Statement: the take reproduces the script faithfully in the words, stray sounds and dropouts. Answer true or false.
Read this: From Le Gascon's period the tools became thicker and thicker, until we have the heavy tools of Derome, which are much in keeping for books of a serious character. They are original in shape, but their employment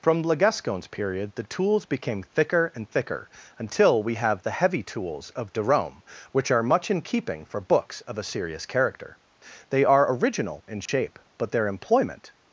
false